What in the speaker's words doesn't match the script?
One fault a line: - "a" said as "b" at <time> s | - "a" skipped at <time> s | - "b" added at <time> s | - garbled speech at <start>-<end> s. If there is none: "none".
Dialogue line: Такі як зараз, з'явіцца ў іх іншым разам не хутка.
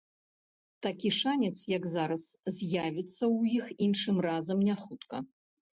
- "шанец" added at 1.2 s